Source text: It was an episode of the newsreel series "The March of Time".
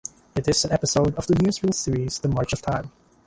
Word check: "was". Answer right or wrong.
wrong